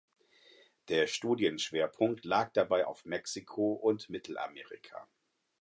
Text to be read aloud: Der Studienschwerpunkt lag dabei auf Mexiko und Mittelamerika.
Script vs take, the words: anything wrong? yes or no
no